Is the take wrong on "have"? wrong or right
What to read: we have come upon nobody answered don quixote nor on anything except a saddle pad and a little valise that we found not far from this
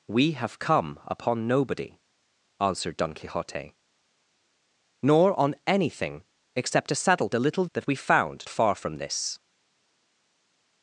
right